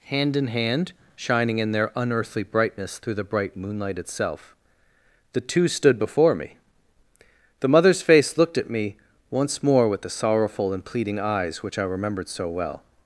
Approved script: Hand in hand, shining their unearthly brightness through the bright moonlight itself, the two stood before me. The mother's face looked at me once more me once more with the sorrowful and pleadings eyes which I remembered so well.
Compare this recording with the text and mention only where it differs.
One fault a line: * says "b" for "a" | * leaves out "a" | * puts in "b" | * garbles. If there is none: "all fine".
* puts in "in"
* leaves out "me once more"
* says "pleading" for "pleadings"